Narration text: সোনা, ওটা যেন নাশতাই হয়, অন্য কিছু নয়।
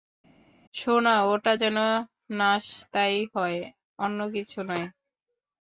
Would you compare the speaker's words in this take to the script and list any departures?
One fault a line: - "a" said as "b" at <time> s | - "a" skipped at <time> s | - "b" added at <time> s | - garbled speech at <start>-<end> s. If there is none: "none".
none